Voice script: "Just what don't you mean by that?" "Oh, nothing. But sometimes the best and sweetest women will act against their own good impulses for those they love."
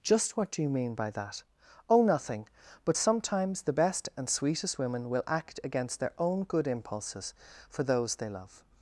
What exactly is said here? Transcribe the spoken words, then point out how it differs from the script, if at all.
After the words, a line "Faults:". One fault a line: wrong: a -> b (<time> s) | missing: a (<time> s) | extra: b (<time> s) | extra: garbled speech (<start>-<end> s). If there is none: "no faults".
"Just what do you mean by that?" "Oh, nothing. But sometimes the best and sweetest women will act against their own good impulses for those they love."
Faults:
wrong: don't -> do (0.5 s)